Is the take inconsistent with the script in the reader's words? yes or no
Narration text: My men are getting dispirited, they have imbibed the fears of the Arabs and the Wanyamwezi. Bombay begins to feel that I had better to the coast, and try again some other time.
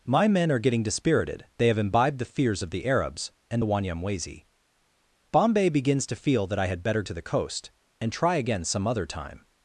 no